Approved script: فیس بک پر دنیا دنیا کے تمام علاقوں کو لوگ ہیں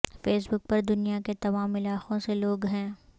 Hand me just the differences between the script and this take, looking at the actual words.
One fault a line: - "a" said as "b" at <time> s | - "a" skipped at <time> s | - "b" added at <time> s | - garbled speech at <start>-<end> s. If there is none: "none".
- "دنیا" skipped at 1.2 s
- "کو" said as "سے" at 2.2 s